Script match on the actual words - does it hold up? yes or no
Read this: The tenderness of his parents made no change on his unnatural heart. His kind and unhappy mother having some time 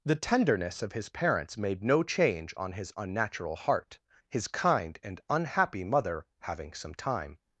yes